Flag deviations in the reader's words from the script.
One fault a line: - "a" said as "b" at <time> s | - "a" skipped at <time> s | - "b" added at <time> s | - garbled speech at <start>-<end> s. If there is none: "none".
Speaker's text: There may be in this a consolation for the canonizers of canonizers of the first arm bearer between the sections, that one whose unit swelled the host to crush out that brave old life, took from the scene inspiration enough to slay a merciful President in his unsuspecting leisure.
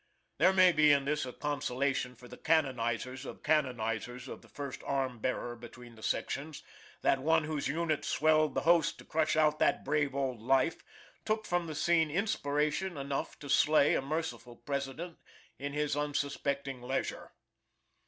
none